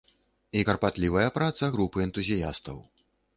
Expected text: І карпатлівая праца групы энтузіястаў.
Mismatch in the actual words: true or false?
false